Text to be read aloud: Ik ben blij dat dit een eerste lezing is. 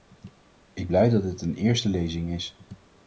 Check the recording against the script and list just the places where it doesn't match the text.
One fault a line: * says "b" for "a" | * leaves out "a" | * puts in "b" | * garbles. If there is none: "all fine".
* leaves out "ben"